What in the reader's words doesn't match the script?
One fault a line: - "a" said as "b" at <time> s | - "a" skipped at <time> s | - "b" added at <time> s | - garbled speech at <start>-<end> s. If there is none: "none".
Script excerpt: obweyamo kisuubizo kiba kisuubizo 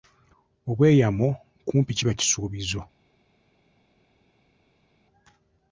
- "kisuubizo" said as "kumpi" at 1.7 s